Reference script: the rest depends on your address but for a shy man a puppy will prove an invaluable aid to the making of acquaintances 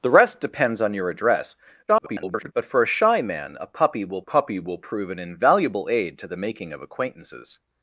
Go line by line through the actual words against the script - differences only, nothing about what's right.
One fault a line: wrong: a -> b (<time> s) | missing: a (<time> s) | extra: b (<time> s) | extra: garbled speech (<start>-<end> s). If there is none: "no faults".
extra: garbled speech (1.9-2.5 s)
extra: puppy will (4.2 s)